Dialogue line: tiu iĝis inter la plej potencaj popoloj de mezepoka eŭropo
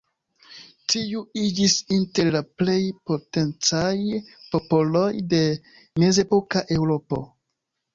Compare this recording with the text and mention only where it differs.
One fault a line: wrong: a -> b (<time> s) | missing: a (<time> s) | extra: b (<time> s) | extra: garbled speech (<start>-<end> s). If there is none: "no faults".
no faults